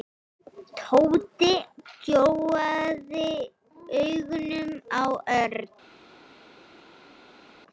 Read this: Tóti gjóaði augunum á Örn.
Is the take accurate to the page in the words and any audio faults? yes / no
yes